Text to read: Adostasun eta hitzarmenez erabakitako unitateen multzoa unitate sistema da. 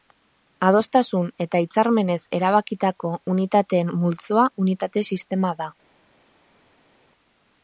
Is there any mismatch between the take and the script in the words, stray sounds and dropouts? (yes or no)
no